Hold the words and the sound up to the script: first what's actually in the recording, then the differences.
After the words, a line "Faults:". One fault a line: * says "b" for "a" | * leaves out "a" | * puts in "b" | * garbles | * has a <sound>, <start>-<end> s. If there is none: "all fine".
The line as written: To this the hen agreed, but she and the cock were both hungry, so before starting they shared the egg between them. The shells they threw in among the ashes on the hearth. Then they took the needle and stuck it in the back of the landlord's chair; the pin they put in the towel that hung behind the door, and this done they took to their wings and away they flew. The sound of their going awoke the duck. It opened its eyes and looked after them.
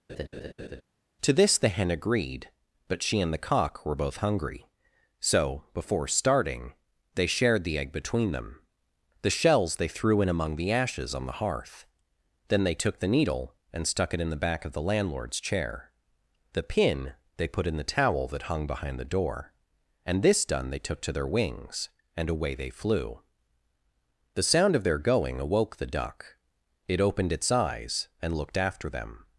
To this the hen agreed, but she and the cock were both hungry, so before starting they shared the egg between them. The shells they threw in among the ashes on the hearth. Then they took the needle and stuck it in the back of the landlord's chair; the pin they put in the towel that hung behind the door, and this done they took to their wings and away they flew. The sound of their going awoke the duck. It opened its eyes and looked after them.
Faults:
* has a laugh, 0.1-0.8 s